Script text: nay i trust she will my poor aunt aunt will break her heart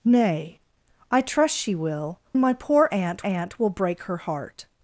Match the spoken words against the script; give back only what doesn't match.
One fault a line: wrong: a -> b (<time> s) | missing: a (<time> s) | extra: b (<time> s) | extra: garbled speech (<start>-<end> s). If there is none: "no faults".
no faults